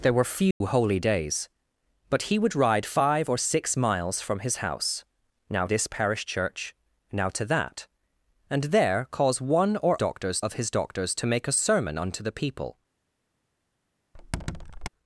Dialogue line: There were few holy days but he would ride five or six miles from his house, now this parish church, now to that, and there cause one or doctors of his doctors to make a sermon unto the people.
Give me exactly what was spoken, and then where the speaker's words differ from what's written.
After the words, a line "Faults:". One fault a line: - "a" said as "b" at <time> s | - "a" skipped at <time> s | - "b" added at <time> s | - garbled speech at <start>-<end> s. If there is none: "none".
There were few holy days but he would ride five or six miles from his house, now this parish church, now to that, and there cause one or doctors of his doctors to make a sermon unto the people.
Faults:
none